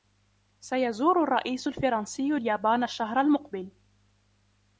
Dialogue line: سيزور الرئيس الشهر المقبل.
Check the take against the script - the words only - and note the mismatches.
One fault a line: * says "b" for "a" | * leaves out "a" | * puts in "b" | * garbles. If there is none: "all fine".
* puts in "الفرنسي اليابان"